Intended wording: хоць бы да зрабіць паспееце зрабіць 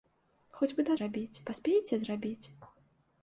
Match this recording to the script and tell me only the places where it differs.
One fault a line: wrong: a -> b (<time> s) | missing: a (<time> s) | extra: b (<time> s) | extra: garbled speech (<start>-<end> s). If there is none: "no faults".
no faults